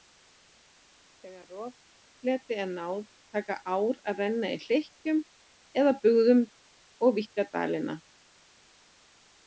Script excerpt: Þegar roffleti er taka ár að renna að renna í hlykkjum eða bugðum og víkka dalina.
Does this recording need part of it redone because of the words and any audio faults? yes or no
yes